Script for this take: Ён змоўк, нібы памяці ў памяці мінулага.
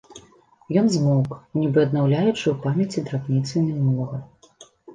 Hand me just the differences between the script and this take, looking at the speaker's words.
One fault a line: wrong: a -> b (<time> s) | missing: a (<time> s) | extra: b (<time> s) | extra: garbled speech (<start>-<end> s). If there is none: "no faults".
wrong: памяці -> аднаўляючы (1.9 s)
extra: драбніцы (3.1 s)